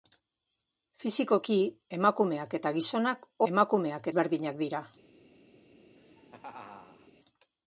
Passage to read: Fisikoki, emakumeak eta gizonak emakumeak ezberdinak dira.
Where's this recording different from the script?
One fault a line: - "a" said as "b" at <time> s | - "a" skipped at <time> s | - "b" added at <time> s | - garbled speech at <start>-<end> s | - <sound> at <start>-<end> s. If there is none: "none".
- laugh at 6.0-7.1 s